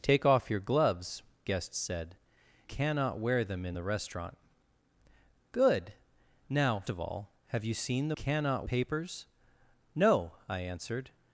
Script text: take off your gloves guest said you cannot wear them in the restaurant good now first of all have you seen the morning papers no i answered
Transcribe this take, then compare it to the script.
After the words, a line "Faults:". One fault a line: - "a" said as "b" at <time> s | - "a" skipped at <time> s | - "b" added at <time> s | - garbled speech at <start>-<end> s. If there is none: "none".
take off your gloves guest said cannot wear them in the restaurant good now of all have you seen the cannot papers no i answered
Faults:
- "you" skipped at 2.1 s
- "first" skipped at 6.8 s
- "morning" said as "cannot" at 8.1 s